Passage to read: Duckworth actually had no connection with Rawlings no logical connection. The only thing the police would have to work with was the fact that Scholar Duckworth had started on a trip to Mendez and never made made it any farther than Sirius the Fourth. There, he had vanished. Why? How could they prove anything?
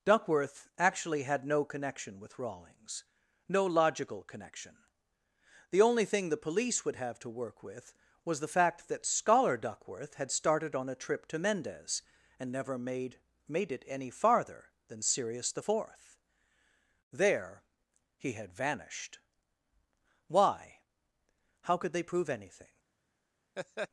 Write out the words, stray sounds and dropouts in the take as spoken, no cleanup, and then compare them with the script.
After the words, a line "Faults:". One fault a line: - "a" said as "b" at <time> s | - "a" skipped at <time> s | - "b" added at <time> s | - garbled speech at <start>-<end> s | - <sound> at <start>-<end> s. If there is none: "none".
Duckworth actually had no connection with Rawlings no logical connection. The only thing the police would have to work with was the fact that Scholar Duckworth had started on a trip to Mendez and never made made it any farther than Sirius the Fourth. There, he had vanished. Why? How could they prove anything?
Faults:
- laugh at 23.6-23.9 s